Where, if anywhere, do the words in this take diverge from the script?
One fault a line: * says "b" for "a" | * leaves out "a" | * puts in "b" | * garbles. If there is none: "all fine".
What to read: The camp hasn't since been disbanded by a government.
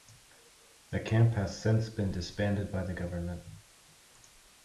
* says "has" for "hasn't"
* says "the" for "a"